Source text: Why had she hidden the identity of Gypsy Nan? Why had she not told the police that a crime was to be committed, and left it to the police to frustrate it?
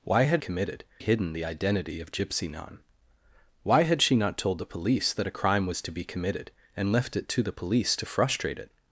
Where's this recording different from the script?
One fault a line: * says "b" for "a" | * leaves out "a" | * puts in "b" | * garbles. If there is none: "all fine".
* says "committed" for "she"